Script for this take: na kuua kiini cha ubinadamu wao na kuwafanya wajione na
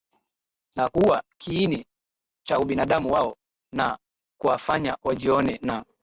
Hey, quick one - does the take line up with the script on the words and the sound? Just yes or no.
yes